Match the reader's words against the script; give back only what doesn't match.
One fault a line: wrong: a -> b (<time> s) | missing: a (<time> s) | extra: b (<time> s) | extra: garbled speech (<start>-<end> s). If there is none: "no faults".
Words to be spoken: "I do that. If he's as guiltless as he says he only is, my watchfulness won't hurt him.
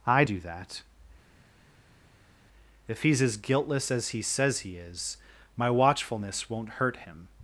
missing: only (4.8 s)